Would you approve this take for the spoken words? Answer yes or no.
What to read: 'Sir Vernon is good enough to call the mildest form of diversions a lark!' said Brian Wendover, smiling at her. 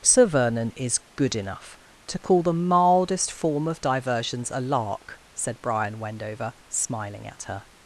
yes